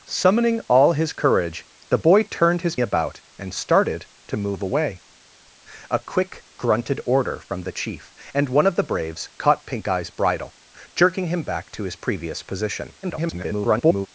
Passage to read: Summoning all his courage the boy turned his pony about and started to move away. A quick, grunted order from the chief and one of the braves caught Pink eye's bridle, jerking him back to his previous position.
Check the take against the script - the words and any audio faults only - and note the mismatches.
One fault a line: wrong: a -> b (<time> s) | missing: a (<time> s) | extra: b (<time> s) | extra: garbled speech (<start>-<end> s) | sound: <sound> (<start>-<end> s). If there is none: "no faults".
missing: pony (2.8 s)
extra: garbled speech (13.0-14.1 s)